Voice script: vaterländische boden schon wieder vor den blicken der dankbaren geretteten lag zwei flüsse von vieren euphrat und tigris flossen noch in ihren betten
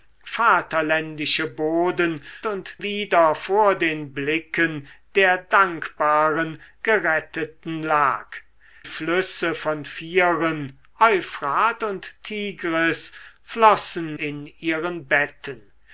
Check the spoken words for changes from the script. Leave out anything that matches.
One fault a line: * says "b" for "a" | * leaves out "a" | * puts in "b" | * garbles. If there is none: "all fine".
* says "und" for "schon"
* leaves out "zwei"
* leaves out "noch"